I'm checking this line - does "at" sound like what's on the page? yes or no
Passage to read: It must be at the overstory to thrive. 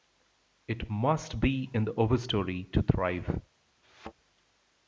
no